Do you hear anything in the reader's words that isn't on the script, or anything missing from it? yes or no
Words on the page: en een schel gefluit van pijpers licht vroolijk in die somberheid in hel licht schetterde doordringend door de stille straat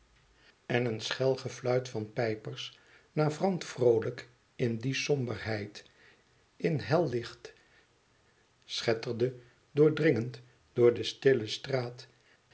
yes